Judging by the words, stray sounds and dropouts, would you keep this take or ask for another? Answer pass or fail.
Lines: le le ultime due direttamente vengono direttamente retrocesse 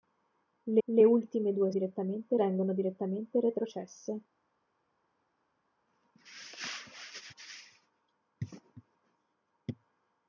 pass